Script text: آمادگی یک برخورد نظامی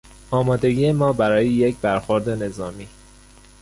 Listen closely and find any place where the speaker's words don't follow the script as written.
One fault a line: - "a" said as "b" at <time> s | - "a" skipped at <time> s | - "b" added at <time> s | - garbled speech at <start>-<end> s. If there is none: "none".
- "ما برای" added at 0.9 s